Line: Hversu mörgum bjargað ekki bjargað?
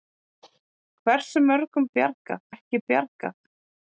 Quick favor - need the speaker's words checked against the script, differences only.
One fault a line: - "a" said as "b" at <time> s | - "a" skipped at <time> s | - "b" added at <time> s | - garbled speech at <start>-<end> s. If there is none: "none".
none